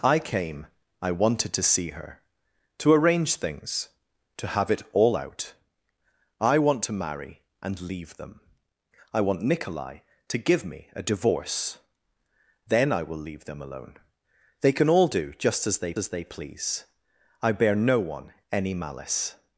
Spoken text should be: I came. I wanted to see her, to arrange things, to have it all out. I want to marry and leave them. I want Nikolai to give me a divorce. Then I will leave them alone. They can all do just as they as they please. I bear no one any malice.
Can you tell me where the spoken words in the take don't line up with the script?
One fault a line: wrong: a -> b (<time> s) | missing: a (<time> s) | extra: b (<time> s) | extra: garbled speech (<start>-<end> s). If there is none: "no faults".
no faults